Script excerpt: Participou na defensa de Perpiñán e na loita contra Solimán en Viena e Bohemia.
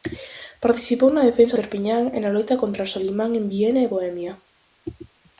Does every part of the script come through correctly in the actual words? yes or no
no